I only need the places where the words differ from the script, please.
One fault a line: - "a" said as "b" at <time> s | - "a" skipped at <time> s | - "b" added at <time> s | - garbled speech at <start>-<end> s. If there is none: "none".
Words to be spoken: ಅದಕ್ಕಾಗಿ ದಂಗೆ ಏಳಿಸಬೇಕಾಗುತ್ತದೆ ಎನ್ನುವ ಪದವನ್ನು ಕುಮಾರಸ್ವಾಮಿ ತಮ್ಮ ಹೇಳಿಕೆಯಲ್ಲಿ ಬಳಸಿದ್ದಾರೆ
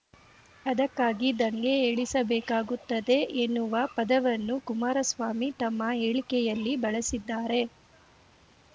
none